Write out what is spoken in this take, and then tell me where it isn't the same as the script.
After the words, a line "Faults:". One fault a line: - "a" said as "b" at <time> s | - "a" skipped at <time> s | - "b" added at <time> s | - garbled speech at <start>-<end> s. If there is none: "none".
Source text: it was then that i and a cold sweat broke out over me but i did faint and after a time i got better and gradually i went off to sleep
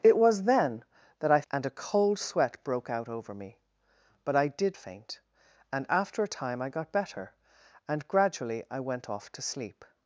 it was then that i and a cold sweat broke out over me but i did faint and after a time i got better and gradually i went off to sleep
Faults:
none